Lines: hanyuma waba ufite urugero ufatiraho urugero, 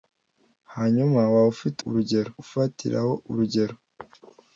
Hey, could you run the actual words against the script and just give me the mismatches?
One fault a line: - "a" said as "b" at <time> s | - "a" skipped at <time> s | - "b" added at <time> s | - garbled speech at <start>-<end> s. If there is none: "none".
none